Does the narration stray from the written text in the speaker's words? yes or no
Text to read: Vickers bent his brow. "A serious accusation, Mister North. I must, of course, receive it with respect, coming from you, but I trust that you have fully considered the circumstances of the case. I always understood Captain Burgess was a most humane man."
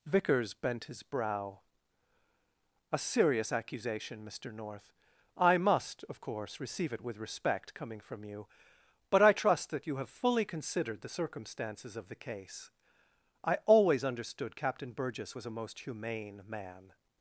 no